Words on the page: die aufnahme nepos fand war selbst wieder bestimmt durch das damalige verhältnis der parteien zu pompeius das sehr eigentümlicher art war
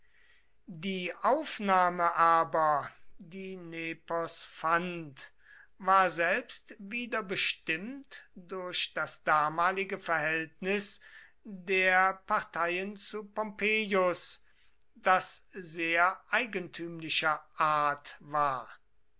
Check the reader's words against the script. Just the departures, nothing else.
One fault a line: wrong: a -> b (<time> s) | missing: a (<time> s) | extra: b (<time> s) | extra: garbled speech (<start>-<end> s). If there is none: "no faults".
extra: aber die (2.1 s)